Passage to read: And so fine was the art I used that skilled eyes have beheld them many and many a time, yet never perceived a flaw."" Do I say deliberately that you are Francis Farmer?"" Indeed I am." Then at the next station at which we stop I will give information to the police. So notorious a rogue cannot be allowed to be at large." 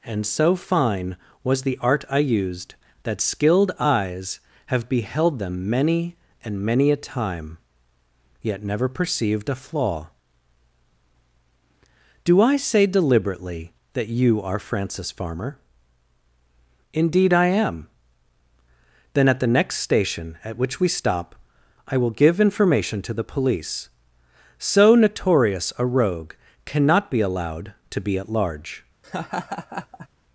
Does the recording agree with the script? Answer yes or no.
yes